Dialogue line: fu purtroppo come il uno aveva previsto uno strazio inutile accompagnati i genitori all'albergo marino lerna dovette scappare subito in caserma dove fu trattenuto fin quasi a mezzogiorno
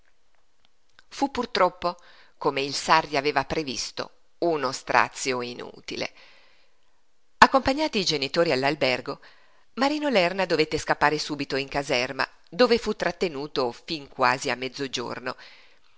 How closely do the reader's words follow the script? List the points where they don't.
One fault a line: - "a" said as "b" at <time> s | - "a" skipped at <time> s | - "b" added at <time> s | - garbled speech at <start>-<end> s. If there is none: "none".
- "uno" said as "sarri" at 2.7 s